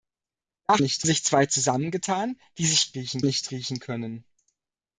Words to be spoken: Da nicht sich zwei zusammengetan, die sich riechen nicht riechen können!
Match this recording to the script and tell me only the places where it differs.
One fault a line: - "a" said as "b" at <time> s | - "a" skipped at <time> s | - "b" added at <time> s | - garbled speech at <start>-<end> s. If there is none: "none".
none